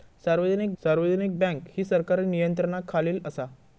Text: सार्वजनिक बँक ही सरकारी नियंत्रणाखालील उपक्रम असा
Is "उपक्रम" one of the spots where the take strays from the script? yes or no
yes